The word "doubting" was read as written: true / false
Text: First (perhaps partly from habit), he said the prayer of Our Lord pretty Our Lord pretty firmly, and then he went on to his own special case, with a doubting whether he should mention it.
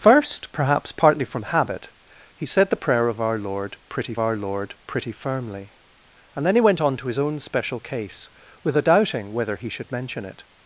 true